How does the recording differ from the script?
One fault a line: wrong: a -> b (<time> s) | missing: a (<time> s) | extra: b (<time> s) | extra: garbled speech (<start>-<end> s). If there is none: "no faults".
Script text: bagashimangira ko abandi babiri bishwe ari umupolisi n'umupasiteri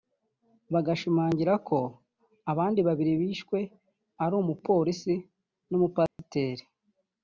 no faults